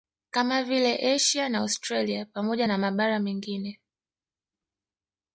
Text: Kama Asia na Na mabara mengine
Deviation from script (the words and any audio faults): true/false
true